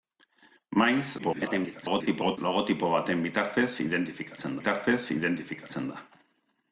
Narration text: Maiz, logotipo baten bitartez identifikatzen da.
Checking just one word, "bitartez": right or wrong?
right